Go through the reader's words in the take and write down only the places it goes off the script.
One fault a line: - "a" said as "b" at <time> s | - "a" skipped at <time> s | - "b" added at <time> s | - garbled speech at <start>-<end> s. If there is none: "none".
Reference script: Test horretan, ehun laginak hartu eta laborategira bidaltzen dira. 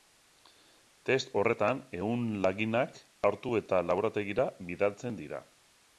none